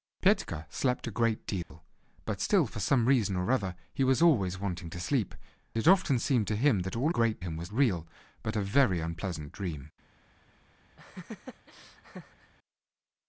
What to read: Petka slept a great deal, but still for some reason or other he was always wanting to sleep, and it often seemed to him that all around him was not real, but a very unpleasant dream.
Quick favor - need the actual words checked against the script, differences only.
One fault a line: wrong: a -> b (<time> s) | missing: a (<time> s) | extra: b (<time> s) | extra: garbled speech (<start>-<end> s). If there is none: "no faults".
missing: and (5.3 s)
wrong: around -> great (7.1 s)
missing: not (7.7 s)